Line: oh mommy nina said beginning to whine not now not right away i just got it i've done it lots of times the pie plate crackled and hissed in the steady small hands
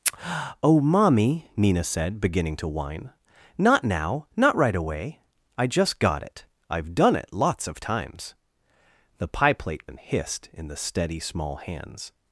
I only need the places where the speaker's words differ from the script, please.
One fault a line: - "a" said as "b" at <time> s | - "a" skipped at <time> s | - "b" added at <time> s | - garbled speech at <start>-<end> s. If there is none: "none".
- "crackled" skipped at 9.9 s